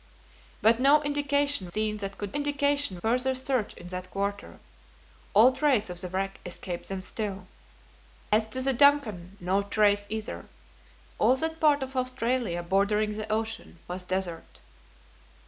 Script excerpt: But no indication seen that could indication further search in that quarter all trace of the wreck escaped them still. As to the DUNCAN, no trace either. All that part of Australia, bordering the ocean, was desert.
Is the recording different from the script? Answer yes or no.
no